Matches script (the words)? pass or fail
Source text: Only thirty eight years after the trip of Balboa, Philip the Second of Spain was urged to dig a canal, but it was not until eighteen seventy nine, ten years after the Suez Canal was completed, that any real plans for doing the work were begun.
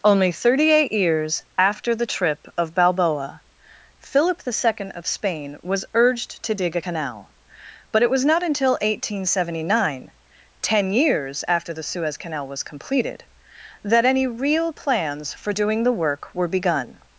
pass